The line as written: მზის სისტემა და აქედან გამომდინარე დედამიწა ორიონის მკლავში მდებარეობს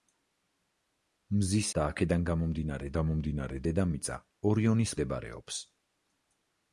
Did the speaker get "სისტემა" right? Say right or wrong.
wrong